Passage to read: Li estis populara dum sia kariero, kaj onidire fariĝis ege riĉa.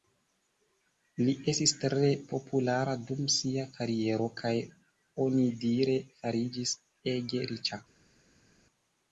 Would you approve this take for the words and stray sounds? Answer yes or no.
no